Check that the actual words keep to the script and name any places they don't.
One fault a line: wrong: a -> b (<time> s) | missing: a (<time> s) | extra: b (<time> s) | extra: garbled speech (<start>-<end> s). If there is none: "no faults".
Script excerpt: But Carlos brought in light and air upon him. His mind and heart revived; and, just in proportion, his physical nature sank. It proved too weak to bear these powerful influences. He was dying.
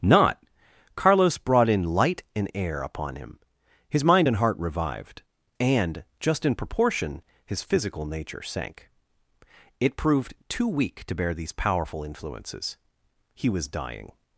wrong: But -> Not (0.0 s)